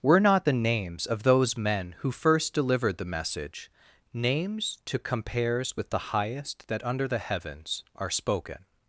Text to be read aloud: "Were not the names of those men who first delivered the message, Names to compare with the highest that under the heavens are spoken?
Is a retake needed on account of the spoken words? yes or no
yes